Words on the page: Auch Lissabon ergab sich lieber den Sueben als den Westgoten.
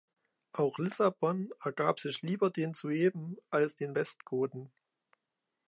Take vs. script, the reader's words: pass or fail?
pass